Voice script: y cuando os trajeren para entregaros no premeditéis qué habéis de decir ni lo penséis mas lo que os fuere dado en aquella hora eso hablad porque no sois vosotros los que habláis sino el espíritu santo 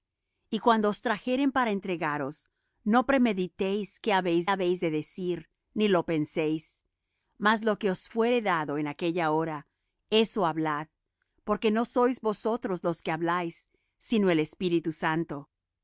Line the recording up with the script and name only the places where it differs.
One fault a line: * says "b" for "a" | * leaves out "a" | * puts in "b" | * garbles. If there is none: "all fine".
* puts in "habéis"